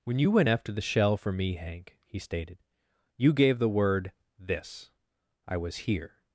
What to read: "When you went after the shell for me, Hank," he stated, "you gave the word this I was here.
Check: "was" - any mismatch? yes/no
no